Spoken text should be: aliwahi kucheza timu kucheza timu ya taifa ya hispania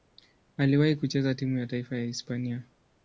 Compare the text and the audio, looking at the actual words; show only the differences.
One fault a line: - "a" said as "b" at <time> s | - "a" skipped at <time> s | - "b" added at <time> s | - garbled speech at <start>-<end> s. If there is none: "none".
- "kucheza timu" skipped at 1.6 s